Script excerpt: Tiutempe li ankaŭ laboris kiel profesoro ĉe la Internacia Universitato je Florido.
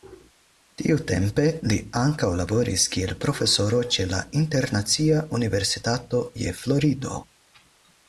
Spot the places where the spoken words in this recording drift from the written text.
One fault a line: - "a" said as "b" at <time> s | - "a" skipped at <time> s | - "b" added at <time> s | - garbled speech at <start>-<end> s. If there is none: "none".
none